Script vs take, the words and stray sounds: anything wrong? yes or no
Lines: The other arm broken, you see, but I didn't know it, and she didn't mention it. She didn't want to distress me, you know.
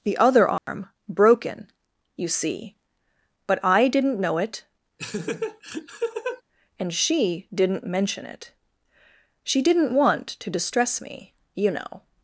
yes